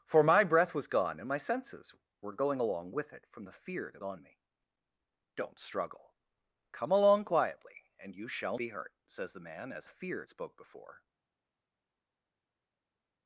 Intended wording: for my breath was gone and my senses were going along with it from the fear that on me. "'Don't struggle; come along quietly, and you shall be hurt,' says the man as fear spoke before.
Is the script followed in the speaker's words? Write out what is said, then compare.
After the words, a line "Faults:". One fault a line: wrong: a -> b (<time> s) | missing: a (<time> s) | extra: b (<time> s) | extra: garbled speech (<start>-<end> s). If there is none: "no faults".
for my breath was gone and my senses were going along with it from the fear that on me. "'Don't struggle; come along quietly, and you shall be hurt,' says the man as fear spoke before.
Faults:
no faults